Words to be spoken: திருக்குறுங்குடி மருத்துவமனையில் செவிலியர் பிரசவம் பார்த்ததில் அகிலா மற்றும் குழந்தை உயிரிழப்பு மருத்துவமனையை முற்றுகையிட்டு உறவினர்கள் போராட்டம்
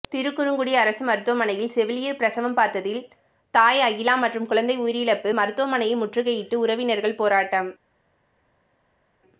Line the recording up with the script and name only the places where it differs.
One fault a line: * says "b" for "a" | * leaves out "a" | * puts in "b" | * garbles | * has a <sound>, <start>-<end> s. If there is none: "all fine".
* puts in "அரசு"
* puts in "தாய்"